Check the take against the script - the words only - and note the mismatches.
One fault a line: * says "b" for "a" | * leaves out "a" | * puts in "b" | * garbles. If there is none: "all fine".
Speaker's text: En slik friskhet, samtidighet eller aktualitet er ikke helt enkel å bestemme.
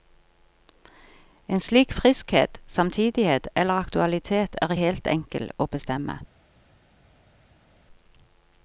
* leaves out "ikke"